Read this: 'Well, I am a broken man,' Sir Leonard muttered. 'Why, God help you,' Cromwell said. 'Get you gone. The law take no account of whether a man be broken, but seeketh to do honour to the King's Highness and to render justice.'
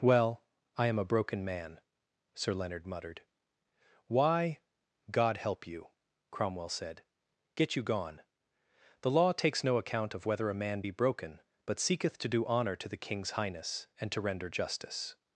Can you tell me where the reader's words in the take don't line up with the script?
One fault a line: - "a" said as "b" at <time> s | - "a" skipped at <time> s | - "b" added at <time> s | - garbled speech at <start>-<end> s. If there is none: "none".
- "take" said as "takes" at 9.3 s